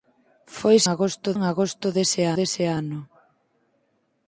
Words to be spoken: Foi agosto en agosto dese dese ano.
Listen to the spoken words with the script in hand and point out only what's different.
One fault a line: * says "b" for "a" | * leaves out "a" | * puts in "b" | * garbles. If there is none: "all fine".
all fine